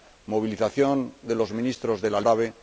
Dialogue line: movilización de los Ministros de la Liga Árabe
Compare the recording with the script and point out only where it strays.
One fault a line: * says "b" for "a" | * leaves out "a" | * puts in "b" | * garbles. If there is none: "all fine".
* leaves out "Liga"